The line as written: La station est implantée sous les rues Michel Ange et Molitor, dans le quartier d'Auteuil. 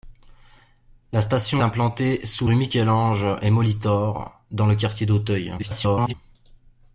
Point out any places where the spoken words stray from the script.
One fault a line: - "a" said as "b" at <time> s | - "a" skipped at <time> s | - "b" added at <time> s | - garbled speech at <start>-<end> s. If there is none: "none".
- "est" skipped at 1.6 s
- "les" skipped at 2.5 s
- garbled speech at 5.6-6.1 s